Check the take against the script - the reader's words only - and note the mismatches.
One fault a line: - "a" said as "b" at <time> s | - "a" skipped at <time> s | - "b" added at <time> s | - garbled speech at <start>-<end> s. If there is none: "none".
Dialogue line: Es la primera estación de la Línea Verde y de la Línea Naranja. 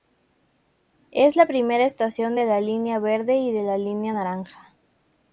none